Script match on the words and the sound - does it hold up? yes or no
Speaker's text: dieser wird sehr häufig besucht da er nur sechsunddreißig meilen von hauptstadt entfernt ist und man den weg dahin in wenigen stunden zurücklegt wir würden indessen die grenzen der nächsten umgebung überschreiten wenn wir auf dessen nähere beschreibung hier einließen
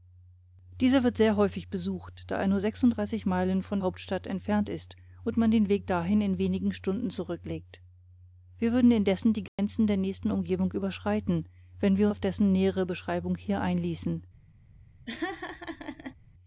no